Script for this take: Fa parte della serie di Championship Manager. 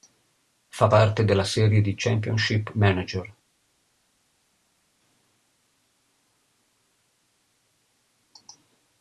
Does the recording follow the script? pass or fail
pass